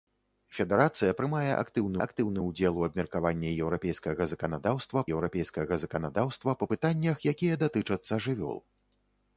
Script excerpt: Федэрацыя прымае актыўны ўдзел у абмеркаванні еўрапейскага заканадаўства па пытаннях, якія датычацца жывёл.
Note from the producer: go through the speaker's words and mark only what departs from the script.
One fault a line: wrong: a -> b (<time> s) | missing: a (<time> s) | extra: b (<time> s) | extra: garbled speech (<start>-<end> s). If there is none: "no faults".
extra: актыўны (2.1 s)
extra: еўрапейскага заканадаўства (5.2 s)